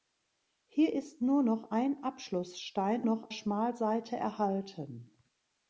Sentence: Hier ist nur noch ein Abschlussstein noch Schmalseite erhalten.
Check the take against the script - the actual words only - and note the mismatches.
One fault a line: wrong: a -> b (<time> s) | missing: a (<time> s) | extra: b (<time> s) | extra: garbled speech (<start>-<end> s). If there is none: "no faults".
no faults